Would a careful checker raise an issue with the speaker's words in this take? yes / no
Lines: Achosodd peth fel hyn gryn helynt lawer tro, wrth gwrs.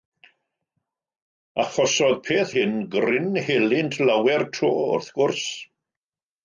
yes